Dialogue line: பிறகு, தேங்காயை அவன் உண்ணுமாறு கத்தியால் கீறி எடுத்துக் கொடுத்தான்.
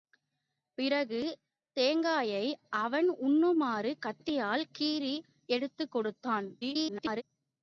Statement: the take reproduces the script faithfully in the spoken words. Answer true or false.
false